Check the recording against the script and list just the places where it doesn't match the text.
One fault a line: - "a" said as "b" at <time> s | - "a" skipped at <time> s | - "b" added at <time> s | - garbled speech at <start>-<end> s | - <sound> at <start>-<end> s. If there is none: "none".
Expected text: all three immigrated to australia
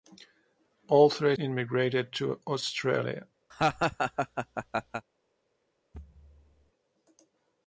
- laugh at 3.5-5.0 s
- thud at 5.9-6.7 s